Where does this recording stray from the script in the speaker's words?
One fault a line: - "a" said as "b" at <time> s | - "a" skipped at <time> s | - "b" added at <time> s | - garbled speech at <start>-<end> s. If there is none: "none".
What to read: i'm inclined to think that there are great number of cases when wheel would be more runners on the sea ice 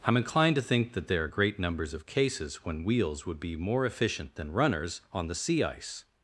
- "number" said as "numbers" at 1.6 s
- "wheel" said as "wheels" at 2.9 s
- "efficient than" added at 3.9 s